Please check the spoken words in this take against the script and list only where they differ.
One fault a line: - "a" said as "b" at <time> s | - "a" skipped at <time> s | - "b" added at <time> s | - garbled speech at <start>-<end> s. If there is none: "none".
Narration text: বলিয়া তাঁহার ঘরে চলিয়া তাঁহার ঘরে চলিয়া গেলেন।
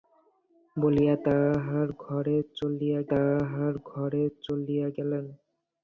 none